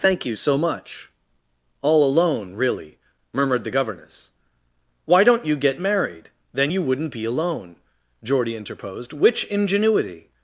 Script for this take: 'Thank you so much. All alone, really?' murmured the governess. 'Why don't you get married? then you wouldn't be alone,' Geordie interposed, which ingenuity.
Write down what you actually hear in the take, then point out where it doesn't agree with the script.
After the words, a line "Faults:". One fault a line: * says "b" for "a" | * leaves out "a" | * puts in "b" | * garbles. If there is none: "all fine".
'Thank you so much. All alone, really?' murmured the governess. 'Why don't you get married? then you wouldn't be alone,' Geordie interposed, which ingenuity.
Faults:
all fine